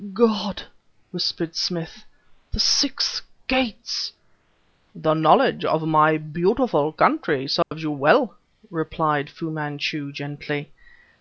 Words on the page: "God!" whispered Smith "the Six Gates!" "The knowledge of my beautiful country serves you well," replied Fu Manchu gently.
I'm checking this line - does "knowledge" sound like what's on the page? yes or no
yes